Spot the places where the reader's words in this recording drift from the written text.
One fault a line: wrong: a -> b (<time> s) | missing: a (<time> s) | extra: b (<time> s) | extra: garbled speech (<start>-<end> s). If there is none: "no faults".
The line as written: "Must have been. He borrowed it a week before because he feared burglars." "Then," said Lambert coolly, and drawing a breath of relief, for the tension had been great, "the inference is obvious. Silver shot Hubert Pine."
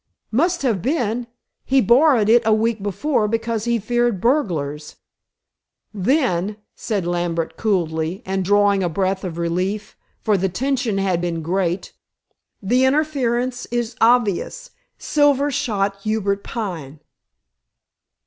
no faults